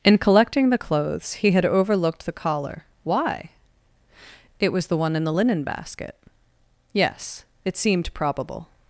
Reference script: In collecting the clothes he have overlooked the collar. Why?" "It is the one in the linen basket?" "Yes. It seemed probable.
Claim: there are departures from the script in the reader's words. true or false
true